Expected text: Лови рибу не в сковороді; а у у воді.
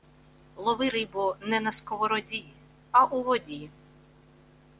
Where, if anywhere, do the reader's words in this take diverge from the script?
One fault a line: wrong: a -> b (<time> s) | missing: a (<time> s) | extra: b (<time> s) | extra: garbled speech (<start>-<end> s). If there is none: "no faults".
wrong: в -> на (1.6 s)
missing: у (3.2 s)